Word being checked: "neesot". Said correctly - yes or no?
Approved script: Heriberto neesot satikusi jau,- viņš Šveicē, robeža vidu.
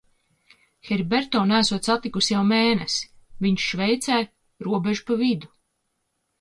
yes